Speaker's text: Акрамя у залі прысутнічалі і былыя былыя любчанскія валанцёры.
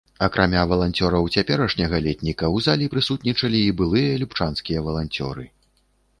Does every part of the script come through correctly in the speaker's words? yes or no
no